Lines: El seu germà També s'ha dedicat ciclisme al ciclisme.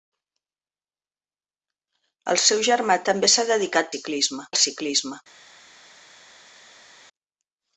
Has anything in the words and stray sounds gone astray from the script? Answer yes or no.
no